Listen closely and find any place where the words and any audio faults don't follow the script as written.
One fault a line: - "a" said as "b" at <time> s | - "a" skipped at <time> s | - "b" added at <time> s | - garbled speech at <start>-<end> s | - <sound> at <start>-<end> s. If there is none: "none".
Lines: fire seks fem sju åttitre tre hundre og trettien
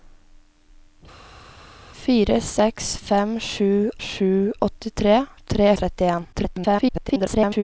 - "sju" added at 4.0 s
- "hundre" skipped at 5.7 s
- garbled speech at 6.3-7.6 s